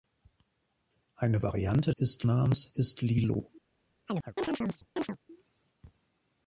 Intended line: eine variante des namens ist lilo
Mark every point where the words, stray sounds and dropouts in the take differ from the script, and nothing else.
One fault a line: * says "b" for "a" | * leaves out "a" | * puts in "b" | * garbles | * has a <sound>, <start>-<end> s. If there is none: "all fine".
* says "ist" for "des"
* has a chirp, 4.1-5.2 s